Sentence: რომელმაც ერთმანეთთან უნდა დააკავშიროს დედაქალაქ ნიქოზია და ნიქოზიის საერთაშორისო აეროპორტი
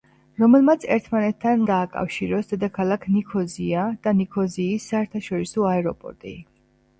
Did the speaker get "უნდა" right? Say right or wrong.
wrong